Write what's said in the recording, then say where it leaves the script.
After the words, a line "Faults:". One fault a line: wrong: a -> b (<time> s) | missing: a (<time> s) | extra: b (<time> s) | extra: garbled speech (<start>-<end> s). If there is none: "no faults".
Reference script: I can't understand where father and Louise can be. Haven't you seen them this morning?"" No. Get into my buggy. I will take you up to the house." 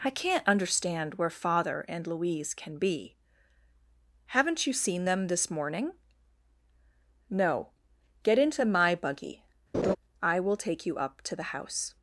I can't understand where father and Louise can be. Haven't you seen them this morning?"" No. Get into my buggy. I will take you up to the house."
Faults:
no faults